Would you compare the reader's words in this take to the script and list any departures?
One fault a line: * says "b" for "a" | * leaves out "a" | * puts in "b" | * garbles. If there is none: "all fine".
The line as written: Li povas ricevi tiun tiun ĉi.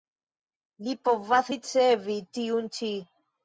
* leaves out "tiun"